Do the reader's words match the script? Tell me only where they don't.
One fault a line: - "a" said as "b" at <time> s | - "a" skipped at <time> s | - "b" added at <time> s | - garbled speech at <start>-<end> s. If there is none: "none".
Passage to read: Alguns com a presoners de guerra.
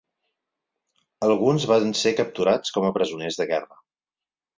- "van ser capturats" added at 1.7 s